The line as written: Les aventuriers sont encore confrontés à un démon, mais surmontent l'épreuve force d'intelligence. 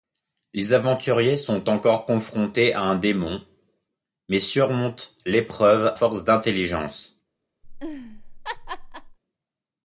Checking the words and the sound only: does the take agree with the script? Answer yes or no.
no